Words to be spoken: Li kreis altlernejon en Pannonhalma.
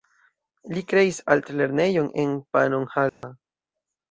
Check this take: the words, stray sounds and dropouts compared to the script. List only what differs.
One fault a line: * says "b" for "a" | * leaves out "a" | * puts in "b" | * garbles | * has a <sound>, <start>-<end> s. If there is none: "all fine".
* has a dropout, 3.1-3.2 s